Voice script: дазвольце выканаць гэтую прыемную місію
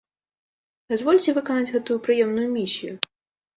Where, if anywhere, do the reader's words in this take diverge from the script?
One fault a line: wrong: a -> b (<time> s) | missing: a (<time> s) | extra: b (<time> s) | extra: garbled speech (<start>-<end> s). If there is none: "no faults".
no faults